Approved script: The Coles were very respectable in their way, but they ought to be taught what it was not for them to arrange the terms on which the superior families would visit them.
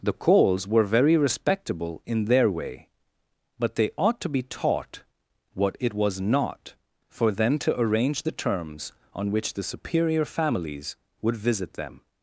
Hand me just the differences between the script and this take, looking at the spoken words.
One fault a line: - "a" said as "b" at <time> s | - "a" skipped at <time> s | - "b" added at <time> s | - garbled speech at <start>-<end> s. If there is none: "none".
none